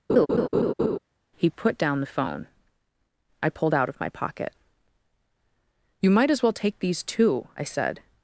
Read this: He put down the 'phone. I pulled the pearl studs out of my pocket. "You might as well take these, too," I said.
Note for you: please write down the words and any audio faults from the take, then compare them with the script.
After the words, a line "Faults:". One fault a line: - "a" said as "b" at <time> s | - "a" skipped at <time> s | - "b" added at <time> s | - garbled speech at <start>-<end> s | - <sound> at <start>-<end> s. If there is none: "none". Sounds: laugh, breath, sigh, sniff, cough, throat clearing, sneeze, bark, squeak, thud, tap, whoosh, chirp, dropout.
He put down the 'phone. I pulled out of my pocket. "You might as well take these, too," I said.
Faults:
- laugh at 0.1-1.0 s
- "the pearl studs" skipped at 3.7 s